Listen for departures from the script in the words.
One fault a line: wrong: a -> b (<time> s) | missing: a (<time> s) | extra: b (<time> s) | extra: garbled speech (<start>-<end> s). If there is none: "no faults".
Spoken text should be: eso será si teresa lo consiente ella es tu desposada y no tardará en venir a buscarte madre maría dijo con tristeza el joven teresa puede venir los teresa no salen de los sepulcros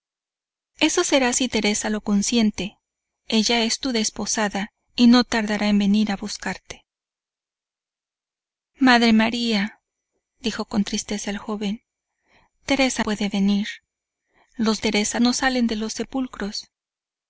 no faults